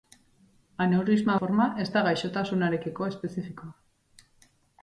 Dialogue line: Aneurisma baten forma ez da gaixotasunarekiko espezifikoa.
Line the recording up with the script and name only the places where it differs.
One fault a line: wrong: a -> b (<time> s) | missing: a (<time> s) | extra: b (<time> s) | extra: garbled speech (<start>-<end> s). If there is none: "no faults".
missing: baten (1.4 s)